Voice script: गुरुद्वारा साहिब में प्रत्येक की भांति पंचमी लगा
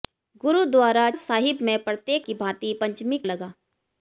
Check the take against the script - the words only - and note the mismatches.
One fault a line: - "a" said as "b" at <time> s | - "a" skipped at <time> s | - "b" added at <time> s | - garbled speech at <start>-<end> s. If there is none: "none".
none